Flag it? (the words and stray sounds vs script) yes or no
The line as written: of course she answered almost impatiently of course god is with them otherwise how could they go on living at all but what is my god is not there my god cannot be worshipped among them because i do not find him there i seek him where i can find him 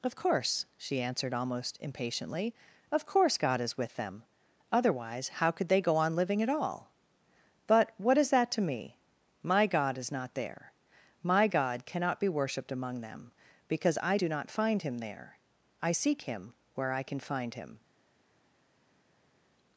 yes